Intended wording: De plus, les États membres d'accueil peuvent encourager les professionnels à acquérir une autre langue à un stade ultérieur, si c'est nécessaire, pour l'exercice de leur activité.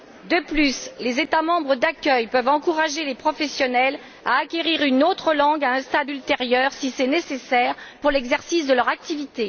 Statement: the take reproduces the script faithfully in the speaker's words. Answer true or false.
true